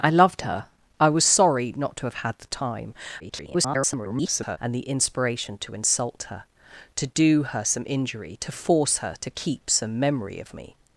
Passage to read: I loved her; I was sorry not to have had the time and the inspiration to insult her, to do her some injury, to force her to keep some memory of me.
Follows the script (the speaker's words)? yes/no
no